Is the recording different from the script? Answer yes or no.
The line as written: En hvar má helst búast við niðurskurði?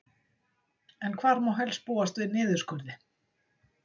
no